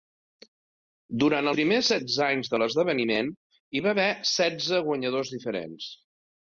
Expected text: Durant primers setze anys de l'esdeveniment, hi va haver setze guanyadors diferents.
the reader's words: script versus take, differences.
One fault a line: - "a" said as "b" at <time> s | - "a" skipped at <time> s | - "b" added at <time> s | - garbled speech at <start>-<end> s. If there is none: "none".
none